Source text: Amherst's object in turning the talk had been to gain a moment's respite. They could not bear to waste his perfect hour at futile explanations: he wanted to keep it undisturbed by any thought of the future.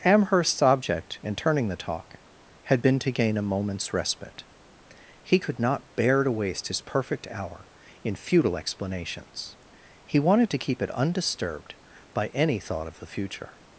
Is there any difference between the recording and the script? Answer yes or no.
yes